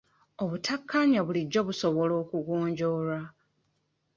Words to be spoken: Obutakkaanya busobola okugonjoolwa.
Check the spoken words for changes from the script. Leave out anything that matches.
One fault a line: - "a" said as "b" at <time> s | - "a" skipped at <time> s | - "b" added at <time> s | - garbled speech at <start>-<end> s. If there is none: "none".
- "bulijjo" added at 1.3 s